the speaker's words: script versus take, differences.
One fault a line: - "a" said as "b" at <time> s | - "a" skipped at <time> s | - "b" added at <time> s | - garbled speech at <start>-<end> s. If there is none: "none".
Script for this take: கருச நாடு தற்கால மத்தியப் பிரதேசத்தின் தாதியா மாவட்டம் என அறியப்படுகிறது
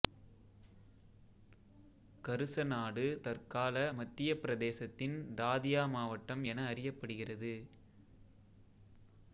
none